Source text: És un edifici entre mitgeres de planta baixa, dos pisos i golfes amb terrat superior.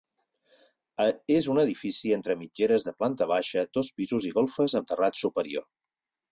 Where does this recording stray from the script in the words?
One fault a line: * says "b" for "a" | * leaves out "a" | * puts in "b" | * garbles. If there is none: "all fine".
all fine